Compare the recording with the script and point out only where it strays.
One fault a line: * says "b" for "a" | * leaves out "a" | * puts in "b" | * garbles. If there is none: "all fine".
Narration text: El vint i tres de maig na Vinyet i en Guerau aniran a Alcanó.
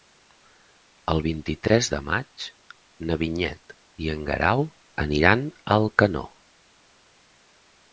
all fine